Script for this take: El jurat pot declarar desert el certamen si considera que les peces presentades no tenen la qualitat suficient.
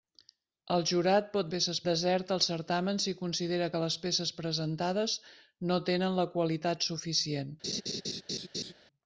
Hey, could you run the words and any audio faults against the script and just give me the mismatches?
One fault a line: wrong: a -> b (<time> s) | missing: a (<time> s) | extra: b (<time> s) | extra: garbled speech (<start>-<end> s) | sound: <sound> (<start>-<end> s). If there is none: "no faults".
wrong: declarar -> peces (1.5 s)
sound: laugh (7.6-8.7 s)